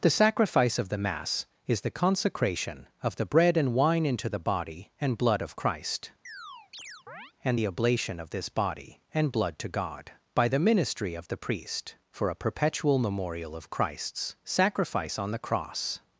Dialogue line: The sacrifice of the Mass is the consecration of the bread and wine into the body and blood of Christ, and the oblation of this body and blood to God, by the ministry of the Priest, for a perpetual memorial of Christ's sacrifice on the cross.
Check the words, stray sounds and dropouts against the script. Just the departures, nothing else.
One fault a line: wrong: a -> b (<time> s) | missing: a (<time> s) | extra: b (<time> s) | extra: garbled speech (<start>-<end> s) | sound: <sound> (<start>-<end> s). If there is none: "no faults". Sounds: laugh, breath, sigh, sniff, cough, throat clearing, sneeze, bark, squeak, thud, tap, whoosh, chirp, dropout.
sound: chirp (6.2-7.3 s)